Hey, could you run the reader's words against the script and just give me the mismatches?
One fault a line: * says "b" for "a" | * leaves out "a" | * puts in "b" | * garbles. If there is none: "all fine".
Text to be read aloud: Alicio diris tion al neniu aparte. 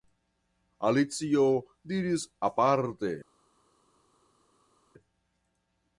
* leaves out "tion al neniu"